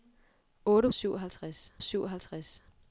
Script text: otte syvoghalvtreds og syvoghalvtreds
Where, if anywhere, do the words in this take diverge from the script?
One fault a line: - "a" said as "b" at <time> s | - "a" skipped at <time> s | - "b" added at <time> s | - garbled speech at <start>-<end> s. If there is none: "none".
none